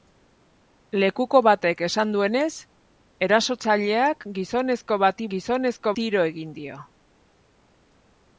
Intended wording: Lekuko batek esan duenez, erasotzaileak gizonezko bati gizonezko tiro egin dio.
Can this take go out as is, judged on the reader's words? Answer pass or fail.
pass